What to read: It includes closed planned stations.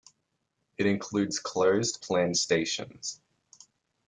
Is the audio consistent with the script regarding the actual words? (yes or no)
yes